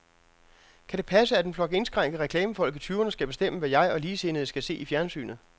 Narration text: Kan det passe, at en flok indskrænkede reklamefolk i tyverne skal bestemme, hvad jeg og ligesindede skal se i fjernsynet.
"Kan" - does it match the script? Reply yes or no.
yes